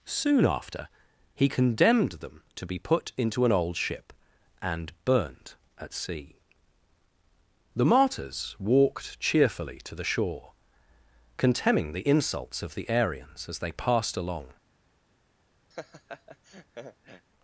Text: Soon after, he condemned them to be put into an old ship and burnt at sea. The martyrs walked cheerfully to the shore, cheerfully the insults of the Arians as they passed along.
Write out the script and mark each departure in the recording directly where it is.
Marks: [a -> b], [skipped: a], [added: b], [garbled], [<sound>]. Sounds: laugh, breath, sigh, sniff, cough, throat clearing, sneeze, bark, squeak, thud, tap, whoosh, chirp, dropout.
Soon after, he condemned them to be put into an old ship and burnt at sea. The martyrs walked cheerfully to the shore, [cheerfully -> contemning] the insults of the Arians as they passed along. [laugh]